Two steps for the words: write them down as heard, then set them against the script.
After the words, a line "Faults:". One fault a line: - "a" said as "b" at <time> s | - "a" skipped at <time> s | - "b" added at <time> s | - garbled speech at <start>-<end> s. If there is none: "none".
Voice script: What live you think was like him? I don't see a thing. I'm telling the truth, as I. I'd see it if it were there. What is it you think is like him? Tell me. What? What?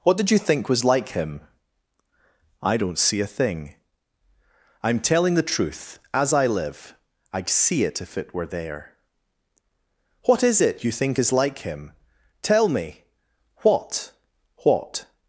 What did you think was like him? I don't see a thing. I'm telling the truth, as I live. I'd see it if it were there. What is it you think is like him? Tell me. What? What?
Faults:
- "live" said as "did" at 0.2 s
- "live" added at 6.5 s